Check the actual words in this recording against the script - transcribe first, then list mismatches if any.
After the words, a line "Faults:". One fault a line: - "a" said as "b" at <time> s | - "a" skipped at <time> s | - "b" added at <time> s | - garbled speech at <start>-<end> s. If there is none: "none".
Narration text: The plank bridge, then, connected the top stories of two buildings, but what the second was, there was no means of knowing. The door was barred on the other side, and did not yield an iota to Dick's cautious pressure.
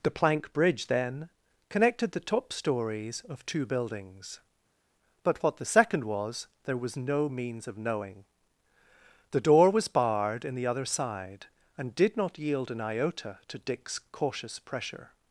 The plank bridge, then, connected the top stories of two buildings, but what the second was, there was no means of knowing. The door was barred in the other side, and did not yield an iota to Dick's cautious pressure.
Faults:
- "on" said as "in" at 10.4 s